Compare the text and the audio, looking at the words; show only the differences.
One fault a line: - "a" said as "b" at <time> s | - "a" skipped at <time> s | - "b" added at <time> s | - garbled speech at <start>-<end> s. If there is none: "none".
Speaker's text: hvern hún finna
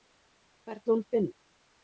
none